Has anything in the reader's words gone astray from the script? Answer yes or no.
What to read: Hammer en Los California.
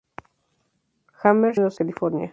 no